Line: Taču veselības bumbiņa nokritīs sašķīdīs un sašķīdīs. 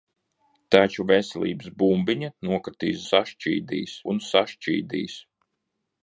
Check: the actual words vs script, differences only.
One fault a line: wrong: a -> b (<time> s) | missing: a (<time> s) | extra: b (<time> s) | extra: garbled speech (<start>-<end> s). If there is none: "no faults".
no faults